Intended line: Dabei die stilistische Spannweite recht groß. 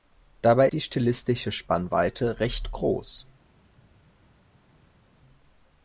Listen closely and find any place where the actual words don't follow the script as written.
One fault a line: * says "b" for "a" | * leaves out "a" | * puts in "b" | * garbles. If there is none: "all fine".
all fine